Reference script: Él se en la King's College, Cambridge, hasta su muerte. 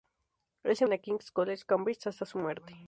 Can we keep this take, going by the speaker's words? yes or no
yes